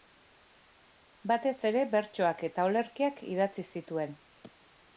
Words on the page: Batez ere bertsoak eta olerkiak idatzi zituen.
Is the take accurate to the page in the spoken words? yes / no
yes